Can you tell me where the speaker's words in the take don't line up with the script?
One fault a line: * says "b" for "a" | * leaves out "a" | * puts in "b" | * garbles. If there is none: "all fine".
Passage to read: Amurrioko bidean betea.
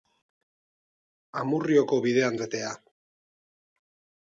all fine